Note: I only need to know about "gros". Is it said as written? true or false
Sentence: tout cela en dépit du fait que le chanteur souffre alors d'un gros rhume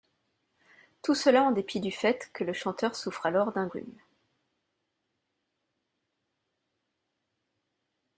false